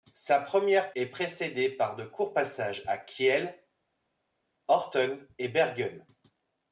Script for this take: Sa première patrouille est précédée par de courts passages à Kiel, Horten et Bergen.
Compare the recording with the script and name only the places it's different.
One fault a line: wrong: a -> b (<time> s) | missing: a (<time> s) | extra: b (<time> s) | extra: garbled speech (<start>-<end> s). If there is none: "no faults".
missing: patrouille (0.9 s)